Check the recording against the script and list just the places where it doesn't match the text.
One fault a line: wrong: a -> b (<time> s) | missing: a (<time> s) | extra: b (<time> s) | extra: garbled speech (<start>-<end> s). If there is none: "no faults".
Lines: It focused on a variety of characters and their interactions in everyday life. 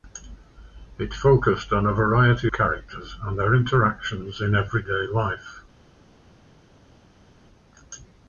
missing: of (2.5 s)